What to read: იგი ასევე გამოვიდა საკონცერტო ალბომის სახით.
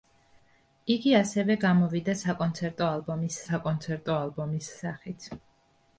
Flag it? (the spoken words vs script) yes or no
yes